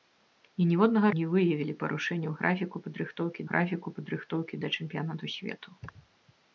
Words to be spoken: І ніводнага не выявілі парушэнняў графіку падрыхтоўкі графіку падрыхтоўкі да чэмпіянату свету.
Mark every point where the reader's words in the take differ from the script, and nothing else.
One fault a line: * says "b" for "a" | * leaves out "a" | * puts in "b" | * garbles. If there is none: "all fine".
all fine